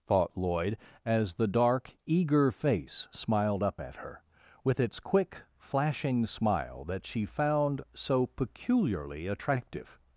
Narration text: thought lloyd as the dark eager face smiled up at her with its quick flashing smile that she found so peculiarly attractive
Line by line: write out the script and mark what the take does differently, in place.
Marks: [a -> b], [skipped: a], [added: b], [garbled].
thought lloyd as the dark eager face smiled up at her with its quick flashing smile that she found so peculiarly attractive